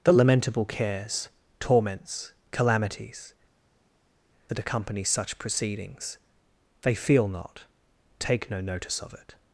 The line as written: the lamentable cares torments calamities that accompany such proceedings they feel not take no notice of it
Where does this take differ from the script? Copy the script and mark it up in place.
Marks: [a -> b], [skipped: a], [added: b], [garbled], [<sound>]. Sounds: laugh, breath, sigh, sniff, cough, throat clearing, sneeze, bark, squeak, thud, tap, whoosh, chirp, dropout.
the lamentable cares torments calamities that accompany such proceedings they feel not take no notice of it